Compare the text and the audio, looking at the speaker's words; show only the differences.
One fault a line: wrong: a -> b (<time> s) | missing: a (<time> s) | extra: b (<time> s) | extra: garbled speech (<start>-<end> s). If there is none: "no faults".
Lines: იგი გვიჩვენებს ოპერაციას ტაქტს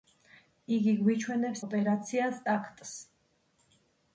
no faults